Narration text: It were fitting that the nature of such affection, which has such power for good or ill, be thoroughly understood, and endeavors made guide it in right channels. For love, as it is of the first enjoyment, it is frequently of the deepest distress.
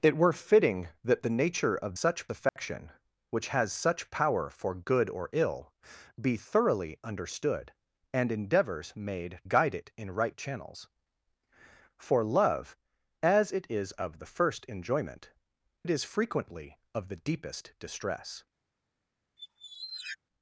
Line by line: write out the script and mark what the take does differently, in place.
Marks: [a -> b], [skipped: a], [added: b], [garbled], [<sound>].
It were fitting that the nature of such affection, [dropout] which has such power for good or ill, be thoroughly understood, and endeavors made guide it in right channels. For love, as it is of the first enjoyment, it is frequently of the deepest distress. [squeak]